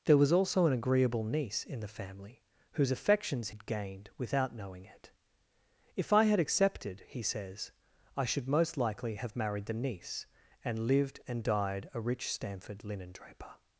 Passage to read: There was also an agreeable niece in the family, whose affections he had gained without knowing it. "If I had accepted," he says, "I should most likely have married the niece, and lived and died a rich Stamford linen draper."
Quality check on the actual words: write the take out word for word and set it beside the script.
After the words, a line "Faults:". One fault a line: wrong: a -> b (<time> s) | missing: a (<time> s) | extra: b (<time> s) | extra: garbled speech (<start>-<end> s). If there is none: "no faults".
There was also an agreeable niece in the family, whose affections had gained without knowing it. "If I had accepted," he says, "I should most likely have married the niece, and lived and died a rich Stamford linen draper."
Faults:
missing: he (3.5 s)